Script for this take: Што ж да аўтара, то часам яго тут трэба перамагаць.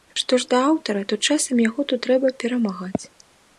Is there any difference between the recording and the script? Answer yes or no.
no